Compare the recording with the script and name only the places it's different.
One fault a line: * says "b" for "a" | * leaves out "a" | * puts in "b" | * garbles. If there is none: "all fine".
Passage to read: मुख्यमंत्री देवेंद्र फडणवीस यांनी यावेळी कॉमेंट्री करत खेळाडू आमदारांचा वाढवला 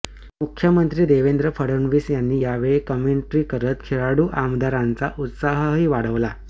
* puts in "उत्साहही"